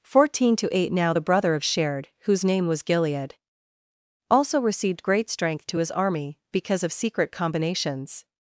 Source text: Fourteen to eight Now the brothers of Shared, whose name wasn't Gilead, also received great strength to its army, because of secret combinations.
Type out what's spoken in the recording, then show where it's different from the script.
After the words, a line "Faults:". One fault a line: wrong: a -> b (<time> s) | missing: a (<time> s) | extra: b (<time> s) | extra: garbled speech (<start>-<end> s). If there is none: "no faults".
Fourteen to eight Now the brother of Shared, whose name was Gilead, also received great strength to his army, because of secret combinations.
Faults:
wrong: brothers -> brother (1.2 s)
wrong: wasn't -> was (2.7 s)
wrong: its -> his (5.8 s)